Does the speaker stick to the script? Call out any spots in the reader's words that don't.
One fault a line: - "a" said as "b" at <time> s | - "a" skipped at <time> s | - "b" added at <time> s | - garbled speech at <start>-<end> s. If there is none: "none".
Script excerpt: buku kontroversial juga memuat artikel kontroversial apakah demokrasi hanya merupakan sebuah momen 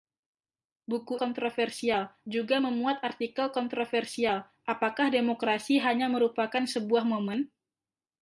none